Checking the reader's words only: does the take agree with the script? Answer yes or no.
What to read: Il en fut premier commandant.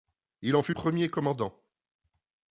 yes